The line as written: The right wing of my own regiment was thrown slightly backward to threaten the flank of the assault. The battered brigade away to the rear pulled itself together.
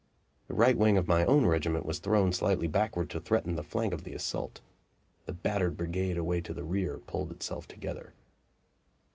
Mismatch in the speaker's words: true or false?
false